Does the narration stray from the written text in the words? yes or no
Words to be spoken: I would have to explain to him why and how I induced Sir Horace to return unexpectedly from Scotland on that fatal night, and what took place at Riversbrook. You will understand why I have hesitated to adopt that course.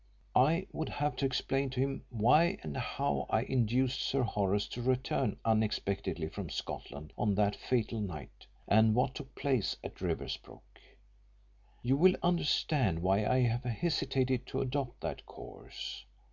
no